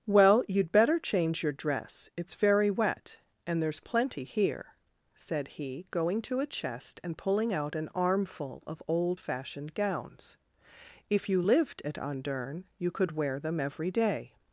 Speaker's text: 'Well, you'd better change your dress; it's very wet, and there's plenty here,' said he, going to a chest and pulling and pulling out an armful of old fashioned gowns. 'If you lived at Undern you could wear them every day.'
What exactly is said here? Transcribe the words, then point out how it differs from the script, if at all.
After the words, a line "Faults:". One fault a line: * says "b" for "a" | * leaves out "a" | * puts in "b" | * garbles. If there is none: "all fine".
'Well, you'd better change your dress; it's very wet, and there's plenty here,' said he, going to a chest and pulling out an armful of old fashioned gowns. 'If you lived at Undern you could wear them every day.'
Faults:
* leaves out "and pulling"